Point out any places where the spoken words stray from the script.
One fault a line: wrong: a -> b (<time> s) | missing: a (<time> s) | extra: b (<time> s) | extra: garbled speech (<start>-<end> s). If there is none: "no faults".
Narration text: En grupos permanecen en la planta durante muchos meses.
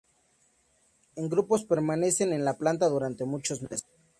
no faults